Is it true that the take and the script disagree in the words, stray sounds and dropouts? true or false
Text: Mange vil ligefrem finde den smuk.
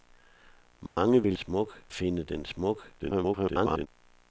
true